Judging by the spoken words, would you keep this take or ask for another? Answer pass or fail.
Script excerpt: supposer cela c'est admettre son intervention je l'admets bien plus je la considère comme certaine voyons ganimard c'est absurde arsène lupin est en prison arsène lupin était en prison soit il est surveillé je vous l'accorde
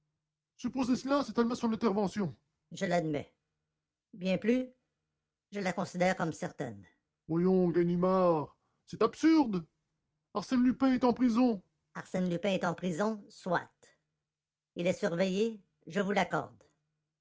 fail